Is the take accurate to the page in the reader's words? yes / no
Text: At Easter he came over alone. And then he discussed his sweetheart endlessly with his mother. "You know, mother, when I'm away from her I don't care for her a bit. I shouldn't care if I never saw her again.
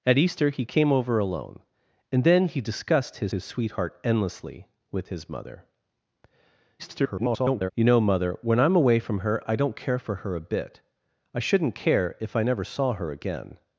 no